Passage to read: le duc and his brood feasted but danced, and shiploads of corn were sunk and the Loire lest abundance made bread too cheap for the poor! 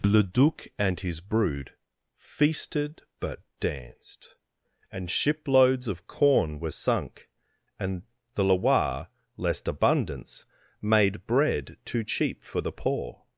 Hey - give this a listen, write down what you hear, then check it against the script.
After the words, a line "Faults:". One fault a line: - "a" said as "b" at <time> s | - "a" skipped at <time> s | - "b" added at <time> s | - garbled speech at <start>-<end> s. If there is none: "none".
le duc and his brood feasted but danced, and shiploads of corn were sunk and the Loire lest abundance made bread too cheap for the poor!
Faults:
none